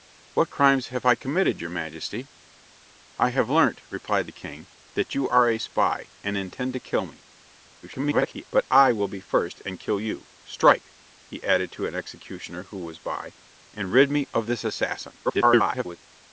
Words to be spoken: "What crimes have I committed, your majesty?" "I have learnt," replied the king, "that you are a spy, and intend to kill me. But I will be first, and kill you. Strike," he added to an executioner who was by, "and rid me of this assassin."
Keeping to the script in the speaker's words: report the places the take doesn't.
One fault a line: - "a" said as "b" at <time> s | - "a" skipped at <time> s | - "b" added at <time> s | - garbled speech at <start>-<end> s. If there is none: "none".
- garbled speech at 7.8-8.5 s
- garbled speech at 15.2-16.0 s